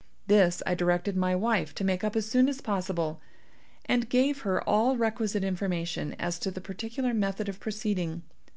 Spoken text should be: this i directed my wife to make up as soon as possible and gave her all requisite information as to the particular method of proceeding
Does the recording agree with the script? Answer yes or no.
yes